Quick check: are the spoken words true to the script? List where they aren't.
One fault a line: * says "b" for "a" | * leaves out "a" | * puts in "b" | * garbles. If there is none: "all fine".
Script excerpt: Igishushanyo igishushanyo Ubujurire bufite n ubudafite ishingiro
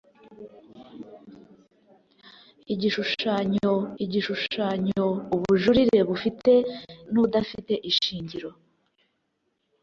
all fine